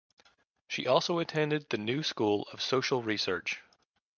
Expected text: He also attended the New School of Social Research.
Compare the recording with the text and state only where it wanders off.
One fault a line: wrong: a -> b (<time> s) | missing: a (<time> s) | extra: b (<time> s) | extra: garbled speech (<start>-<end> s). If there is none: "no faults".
wrong: He -> She (0.7 s)